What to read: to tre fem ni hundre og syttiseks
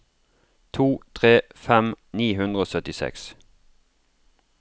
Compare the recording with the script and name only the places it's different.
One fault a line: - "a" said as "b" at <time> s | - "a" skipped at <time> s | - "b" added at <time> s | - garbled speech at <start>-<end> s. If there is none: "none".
none